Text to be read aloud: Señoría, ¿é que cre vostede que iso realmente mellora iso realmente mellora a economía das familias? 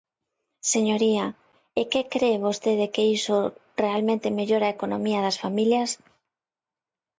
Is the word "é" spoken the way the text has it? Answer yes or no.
yes